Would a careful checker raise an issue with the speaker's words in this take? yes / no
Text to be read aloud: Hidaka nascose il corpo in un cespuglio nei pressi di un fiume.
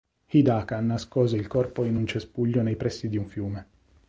no